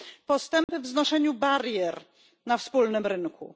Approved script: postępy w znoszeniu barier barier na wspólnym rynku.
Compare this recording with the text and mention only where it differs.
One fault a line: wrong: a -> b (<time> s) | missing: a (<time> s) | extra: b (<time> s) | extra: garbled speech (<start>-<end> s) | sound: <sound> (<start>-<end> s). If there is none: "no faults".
sound: dropout (0.6-0.7 s)
missing: barier (1.9 s)